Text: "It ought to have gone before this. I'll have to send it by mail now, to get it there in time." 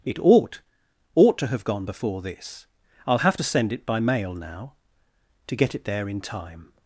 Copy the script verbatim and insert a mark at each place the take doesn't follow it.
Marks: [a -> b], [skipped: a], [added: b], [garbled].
"It ought [added: ought] to have gone before this. I'll have to send it by mail now, to get it there in time."